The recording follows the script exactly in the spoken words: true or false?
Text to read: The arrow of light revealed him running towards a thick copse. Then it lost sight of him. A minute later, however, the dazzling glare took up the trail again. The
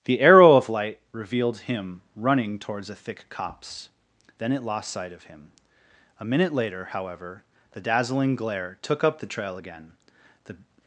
true